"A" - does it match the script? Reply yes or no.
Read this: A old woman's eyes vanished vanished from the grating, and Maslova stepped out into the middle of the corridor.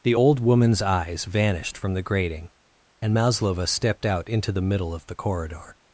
no